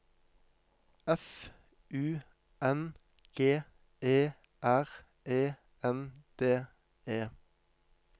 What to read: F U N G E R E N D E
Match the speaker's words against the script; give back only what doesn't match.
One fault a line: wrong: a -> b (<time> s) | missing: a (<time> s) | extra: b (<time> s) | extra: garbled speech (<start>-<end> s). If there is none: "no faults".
no faults